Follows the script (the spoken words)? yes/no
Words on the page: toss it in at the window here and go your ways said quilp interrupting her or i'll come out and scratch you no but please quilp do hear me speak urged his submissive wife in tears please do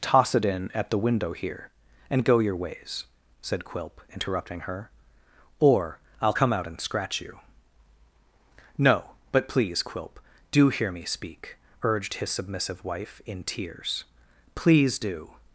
yes